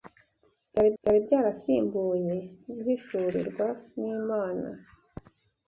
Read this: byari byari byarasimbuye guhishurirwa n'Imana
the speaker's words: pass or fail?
pass